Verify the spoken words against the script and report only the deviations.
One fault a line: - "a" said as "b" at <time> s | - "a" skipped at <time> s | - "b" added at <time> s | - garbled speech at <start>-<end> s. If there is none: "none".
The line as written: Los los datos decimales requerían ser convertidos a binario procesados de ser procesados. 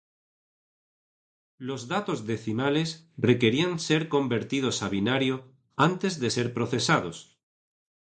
- "los" skipped at 1.9 s
- "procesados" said as "antes" at 5.8 s